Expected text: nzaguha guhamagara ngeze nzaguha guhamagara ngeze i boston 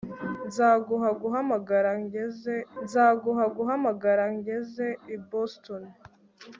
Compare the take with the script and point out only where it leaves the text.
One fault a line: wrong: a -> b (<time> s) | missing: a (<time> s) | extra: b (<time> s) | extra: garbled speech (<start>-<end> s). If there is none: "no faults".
no faults